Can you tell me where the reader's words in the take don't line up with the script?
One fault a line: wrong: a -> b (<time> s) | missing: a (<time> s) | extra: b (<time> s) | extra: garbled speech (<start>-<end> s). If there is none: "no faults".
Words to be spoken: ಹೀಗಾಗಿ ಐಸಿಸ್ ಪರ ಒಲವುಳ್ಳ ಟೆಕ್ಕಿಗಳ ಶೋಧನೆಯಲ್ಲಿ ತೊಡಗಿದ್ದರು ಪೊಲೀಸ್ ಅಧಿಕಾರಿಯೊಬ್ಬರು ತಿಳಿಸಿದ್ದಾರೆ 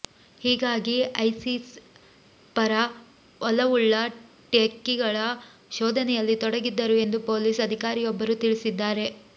extra: ಎಂದು (7.0 s)